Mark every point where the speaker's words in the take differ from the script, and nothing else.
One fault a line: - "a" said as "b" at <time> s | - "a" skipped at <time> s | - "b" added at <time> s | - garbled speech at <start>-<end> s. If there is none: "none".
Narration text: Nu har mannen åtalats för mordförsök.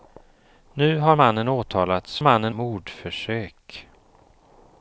- "för" said as "mannen" at 2.2 s